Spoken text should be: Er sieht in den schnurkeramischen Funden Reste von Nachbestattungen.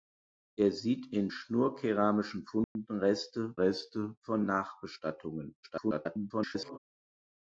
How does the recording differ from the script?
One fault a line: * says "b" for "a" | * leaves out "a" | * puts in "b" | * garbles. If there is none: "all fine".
* leaves out "den"
* puts in "Reste"
* garbles